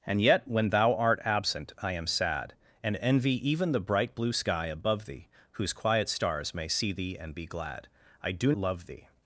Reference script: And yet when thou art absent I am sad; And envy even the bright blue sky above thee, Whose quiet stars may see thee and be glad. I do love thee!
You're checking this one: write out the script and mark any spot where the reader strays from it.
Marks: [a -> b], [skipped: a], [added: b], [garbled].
And yet when thou art absent I am sad; And envy even the bright blue sky above thee, Whose quiet stars may see thee and be glad. I do love thee!